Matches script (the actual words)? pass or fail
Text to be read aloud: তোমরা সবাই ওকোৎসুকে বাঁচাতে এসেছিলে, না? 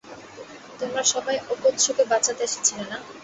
pass